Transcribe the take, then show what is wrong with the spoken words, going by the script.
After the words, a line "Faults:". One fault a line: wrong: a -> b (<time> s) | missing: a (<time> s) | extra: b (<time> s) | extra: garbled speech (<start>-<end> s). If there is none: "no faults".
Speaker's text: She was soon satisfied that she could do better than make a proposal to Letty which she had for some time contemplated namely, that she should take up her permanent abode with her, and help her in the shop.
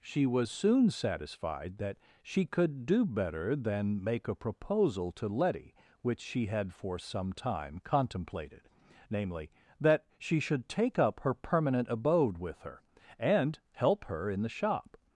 She was soon satisfied that she could do better than make a proposal to Letty which she had for some time contemplated namely, that she should take up her permanent abode with her, and help her in the shop.
Faults:
no faults